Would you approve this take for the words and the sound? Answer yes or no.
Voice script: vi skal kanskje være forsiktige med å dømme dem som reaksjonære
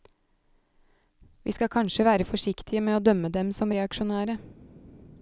yes